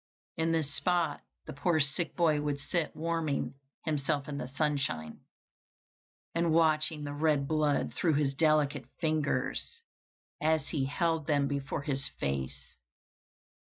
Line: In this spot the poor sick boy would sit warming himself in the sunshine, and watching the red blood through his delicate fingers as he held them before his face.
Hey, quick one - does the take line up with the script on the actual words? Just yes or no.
yes